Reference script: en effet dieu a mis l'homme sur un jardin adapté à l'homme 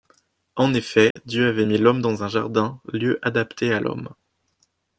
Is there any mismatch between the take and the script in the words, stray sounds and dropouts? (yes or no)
yes